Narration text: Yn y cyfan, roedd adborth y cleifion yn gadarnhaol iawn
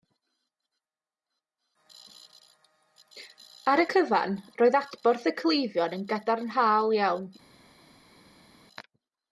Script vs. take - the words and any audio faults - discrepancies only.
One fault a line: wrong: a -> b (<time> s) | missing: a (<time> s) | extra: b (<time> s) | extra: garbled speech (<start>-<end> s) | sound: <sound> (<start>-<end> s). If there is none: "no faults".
wrong: Yn -> Ar (3.7 s)